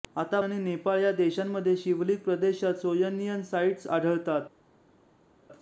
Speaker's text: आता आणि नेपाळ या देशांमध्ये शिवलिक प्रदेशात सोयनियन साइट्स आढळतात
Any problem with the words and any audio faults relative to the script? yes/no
no